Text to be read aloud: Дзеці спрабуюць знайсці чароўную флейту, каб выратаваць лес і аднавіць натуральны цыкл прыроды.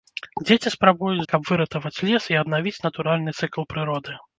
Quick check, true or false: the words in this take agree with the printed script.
false